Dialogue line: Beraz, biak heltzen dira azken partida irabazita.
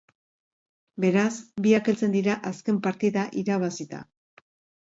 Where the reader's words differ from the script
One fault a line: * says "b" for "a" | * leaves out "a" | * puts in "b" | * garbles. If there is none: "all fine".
all fine